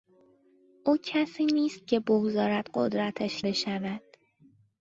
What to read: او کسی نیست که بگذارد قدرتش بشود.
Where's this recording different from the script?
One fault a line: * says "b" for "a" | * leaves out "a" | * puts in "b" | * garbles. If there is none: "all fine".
all fine